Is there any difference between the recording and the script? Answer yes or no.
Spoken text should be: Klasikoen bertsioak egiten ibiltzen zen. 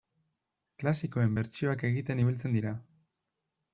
yes